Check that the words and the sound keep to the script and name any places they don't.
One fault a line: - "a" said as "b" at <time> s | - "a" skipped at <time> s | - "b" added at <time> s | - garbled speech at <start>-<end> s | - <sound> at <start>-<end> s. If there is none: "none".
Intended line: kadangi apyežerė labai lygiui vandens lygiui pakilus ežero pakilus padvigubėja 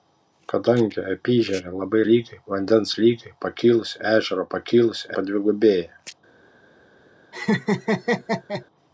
- laugh at 7.3-8.6 s